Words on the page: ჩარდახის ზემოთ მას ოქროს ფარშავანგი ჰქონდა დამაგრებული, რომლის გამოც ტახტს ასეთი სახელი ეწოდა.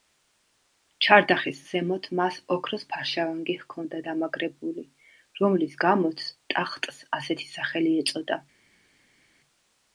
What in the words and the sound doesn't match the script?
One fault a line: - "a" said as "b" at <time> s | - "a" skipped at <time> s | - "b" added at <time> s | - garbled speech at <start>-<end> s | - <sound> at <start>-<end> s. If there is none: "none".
none